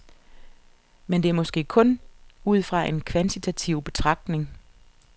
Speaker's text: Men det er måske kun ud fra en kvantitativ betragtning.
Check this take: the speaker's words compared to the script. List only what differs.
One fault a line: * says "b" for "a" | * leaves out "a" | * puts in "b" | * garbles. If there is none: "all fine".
all fine